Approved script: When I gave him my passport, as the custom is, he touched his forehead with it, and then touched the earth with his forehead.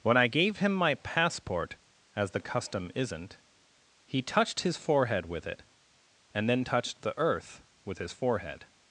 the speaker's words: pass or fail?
fail